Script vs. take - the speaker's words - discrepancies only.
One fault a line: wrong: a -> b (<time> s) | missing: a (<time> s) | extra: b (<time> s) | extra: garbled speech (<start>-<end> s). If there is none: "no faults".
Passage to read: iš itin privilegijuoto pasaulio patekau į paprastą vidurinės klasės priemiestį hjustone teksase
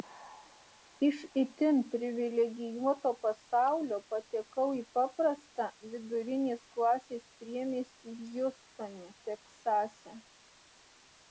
no faults